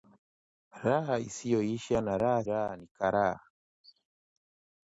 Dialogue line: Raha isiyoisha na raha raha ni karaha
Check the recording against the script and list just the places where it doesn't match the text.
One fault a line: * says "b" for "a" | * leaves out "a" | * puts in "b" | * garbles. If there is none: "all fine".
all fine